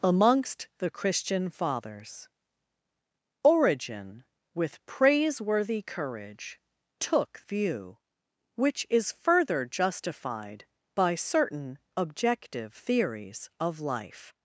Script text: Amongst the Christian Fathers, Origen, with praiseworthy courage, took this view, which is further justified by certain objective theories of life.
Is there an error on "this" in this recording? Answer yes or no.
yes